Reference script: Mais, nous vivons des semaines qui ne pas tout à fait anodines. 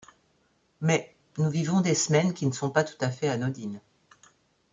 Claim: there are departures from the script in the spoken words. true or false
true